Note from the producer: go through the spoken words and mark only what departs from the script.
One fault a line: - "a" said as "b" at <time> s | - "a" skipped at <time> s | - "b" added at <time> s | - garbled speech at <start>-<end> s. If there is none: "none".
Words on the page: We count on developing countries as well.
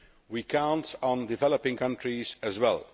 none